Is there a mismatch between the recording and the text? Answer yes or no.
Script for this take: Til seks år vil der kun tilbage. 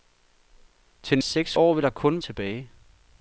no